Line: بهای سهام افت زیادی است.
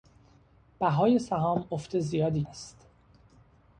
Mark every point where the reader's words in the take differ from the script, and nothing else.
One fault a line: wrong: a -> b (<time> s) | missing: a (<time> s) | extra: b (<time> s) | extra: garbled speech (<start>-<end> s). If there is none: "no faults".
no faults